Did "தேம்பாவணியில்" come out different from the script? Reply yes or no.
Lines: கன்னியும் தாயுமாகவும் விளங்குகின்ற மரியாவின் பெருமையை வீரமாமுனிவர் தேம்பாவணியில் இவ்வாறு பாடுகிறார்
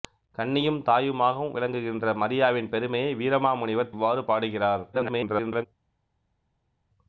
yes